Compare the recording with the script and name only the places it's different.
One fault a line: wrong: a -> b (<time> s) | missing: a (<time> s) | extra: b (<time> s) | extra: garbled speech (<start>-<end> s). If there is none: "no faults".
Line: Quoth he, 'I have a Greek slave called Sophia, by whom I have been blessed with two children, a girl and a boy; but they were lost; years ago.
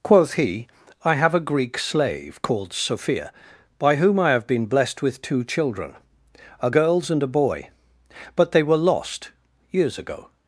wrong: girl -> girls (6.7 s)